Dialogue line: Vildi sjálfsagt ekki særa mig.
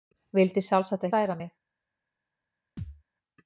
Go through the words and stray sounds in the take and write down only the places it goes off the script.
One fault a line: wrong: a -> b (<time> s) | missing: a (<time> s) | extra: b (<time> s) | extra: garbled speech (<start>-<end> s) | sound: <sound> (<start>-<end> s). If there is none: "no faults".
missing: ekki (1.1 s)
sound: thud (2.8-3.0 s)